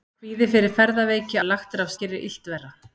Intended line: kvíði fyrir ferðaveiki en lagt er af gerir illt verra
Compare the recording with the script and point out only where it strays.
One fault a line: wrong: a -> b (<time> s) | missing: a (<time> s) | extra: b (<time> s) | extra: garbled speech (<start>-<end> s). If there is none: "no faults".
no faults